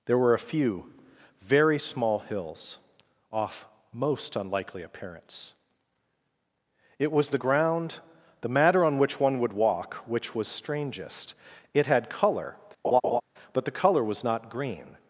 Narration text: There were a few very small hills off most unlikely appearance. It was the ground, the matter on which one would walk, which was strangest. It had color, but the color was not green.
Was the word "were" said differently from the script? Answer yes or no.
no